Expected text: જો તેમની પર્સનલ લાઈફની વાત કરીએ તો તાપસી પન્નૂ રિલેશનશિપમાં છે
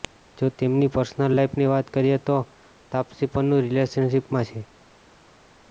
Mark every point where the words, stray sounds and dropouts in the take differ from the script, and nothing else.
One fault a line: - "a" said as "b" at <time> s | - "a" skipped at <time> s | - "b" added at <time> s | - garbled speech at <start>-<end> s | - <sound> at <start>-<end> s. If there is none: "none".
none